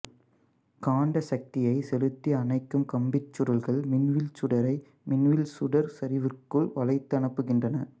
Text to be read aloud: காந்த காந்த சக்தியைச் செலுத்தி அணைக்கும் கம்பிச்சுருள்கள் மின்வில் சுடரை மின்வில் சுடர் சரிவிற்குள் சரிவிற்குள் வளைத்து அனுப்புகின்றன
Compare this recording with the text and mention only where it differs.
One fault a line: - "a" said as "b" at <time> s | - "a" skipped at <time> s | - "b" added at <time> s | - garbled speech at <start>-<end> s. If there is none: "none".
- "காந்த" skipped at 1.2 s
- "சரிவிற்குள்" skipped at 6.7 s